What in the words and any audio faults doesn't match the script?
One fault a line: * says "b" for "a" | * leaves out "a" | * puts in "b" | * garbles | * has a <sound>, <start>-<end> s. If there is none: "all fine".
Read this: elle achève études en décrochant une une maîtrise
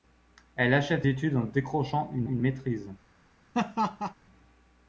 * has a laugh, 3.5-4.1 s